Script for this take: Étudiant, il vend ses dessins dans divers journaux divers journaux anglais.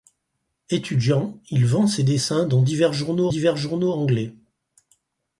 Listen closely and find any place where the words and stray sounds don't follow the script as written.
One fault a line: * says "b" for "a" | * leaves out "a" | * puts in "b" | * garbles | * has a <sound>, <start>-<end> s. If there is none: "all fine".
all fine